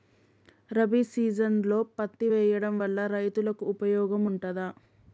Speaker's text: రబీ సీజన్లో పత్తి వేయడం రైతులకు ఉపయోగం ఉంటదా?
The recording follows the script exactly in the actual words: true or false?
false